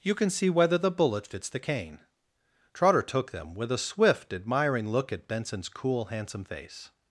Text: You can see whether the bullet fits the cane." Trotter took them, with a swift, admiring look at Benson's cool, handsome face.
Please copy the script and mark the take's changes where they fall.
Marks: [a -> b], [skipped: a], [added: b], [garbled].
You can see whether the bullet fits the cane." Trotter took them, with a swift, admiring look at Benson's cool, handsome face.